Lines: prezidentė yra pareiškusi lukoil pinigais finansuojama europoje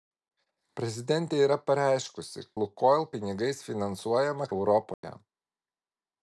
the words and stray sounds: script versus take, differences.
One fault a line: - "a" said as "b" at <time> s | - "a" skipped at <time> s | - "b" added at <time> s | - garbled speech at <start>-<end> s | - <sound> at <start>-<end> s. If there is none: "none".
- dropout at 4.9-5.0 s